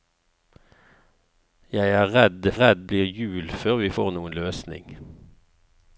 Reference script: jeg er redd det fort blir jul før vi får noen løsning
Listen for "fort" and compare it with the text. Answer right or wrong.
wrong